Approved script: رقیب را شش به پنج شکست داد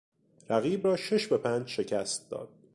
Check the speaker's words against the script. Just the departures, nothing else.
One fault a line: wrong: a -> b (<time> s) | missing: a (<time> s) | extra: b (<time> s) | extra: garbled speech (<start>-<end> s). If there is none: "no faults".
no faults